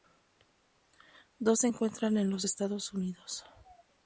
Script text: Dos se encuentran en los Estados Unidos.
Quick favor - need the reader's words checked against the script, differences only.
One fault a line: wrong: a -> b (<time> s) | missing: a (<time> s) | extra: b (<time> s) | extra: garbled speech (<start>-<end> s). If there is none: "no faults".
no faults